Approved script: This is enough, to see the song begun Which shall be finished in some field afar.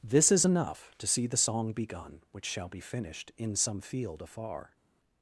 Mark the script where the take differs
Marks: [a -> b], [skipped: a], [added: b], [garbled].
This is enough, to see the song begun Which shall be finished in some field afar.